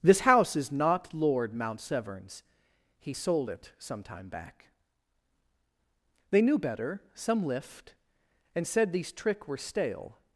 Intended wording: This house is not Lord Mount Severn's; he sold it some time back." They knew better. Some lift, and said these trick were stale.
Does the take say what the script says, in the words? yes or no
yes